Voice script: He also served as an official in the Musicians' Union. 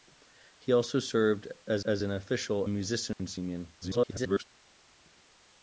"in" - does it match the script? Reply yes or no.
no